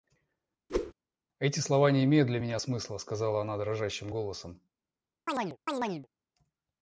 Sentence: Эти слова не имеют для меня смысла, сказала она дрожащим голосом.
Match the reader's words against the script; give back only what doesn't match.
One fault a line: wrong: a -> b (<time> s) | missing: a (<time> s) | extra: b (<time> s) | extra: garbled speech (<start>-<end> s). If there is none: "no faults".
no faults